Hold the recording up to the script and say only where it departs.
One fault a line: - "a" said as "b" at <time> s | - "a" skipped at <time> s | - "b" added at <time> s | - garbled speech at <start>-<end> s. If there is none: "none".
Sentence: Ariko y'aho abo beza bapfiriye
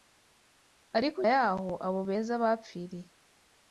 none